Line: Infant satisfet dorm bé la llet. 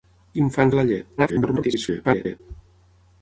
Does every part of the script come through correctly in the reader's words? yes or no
no